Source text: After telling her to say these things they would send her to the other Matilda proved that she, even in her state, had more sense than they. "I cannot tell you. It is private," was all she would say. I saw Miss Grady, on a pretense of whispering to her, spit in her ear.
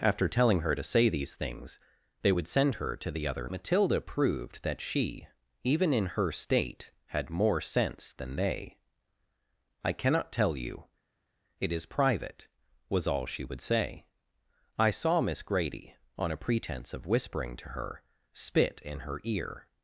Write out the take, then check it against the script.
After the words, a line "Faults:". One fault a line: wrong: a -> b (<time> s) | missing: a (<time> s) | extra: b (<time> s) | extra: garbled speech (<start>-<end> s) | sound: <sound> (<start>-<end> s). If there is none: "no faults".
After telling her to say these things they would send her to the other Matilda proved that she, even in her state, had more sense than they. "I cannot tell you. It is private," was all she would say. I saw Miss Grady, on a pretense of whispering to her, spit in her ear.
Faults:
no faults